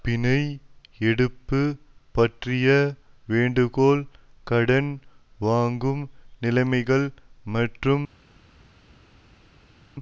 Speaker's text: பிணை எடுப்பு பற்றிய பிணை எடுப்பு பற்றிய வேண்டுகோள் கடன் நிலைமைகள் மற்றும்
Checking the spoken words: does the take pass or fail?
fail